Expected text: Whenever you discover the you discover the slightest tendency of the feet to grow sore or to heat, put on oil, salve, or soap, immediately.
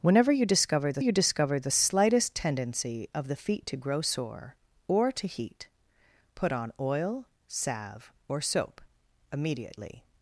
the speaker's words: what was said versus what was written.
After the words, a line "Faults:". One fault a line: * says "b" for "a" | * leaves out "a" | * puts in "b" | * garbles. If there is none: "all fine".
Whenever you discover the you discover the slightest tendency of the feet to grow sore or to heat, put on oil, salve, or soap, immediately.
Faults:
all fine